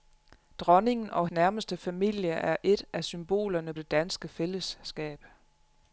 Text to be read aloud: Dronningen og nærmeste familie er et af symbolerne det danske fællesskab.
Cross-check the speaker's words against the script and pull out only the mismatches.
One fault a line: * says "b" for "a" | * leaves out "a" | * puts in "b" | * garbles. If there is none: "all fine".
all fine